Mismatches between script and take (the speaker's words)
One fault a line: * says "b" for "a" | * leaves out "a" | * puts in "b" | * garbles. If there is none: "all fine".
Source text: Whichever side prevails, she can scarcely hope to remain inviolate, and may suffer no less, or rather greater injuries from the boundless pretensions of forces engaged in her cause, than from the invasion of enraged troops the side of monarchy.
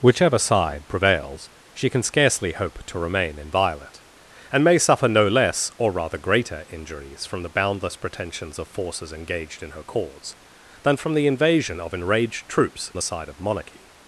all fine